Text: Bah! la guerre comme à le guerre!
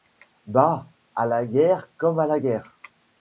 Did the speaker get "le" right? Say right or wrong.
wrong